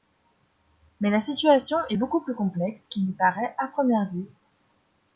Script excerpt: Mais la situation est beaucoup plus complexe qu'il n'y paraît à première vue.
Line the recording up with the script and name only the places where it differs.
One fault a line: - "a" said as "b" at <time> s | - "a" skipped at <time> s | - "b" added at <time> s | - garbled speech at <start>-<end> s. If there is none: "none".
none